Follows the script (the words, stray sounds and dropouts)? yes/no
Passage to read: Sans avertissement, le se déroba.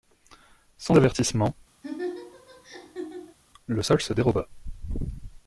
no